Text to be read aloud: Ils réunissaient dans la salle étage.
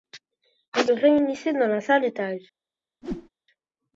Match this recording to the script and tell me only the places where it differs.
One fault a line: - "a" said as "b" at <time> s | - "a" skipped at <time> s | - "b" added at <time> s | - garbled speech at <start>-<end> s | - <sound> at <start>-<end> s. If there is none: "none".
- whoosh at 3.0-3.3 s